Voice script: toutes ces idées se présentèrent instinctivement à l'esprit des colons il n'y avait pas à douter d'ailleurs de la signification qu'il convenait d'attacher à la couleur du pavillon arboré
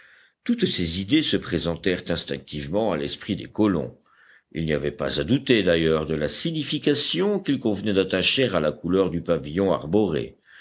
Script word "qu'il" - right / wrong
right